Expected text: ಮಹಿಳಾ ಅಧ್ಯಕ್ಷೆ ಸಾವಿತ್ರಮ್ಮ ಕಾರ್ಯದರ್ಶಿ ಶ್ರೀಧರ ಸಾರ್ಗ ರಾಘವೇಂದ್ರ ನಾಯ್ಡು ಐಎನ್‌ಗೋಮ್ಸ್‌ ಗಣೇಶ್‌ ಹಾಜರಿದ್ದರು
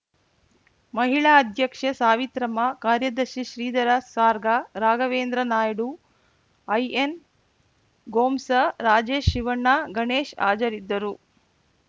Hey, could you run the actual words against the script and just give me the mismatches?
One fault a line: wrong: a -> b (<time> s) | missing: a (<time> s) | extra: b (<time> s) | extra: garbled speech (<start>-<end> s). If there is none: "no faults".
extra: ರಾಜೇಶ್ ಶಿವಣ್ಣ (8.8 s)